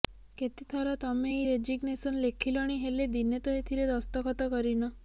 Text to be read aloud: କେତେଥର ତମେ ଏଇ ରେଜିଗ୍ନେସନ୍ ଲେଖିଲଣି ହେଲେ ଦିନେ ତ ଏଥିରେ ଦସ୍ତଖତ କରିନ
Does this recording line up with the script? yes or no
yes